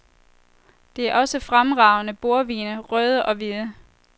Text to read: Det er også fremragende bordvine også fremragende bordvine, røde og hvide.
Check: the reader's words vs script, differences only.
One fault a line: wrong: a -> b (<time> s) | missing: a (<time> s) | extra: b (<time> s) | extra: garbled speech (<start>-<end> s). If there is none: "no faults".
missing: også fremragende bordvine (2.8 s)